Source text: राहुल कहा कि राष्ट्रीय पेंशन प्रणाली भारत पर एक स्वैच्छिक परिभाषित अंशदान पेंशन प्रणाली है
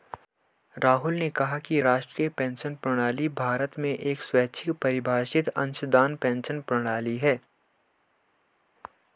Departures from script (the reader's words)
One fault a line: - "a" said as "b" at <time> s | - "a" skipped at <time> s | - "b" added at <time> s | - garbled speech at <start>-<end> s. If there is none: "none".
- "ने" added at 1.1 s
- "पर" said as "में" at 3.8 s